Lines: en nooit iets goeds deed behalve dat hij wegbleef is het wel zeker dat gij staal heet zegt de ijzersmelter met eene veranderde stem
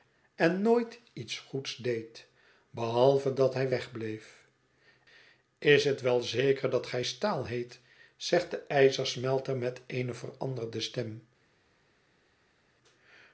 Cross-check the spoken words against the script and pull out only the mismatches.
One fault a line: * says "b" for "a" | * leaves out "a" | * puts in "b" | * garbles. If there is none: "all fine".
all fine